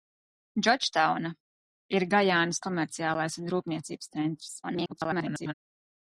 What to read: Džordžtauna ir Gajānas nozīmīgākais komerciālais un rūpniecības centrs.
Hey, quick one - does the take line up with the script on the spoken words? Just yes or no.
no